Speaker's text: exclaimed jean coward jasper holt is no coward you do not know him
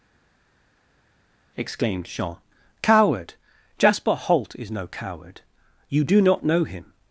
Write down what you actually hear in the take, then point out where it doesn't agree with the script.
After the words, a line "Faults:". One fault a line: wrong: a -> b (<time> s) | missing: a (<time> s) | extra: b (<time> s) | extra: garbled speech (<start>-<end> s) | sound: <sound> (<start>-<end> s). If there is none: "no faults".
exclaimed jean coward jasper holt is no coward you do not know him
Faults:
no faults